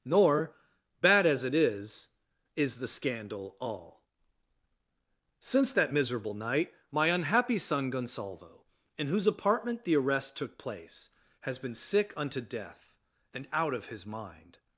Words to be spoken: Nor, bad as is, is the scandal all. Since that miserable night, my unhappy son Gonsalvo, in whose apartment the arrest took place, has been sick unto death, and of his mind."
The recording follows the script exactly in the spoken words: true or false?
false